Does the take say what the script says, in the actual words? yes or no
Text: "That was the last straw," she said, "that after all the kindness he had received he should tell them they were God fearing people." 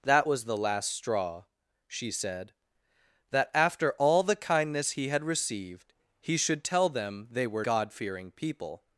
yes